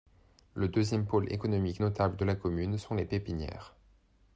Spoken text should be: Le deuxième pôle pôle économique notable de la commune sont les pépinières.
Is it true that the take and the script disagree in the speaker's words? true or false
true